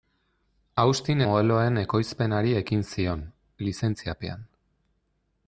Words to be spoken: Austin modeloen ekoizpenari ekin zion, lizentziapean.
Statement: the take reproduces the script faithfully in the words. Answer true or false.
true